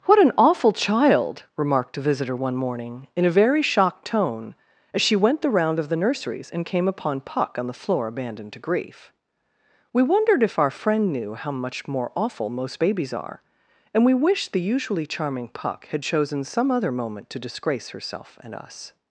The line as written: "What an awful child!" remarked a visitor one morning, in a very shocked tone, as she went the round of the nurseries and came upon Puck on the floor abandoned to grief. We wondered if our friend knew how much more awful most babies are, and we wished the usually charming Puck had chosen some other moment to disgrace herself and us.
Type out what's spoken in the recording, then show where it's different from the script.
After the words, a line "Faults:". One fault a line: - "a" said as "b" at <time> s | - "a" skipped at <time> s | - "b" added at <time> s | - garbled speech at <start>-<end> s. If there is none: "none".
"What an awful child!" remarked a visitor one morning, in a very shocked tone, as she went the round of the nurseries and came upon Puck on the floor abandoned to grief. We wondered if our friend knew how much more awful most babies are, and we wished the usually charming Puck had chosen some other moment to disgrace herself and us.
Faults:
none